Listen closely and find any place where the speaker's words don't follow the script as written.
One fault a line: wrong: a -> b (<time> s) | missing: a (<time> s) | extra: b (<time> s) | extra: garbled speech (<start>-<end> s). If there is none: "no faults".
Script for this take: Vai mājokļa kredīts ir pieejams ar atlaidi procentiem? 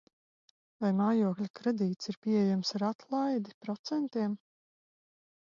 no faults